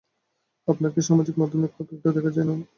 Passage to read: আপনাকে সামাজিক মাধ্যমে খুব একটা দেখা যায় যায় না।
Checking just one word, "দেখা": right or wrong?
right